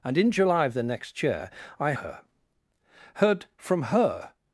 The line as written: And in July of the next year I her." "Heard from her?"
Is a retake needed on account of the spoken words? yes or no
no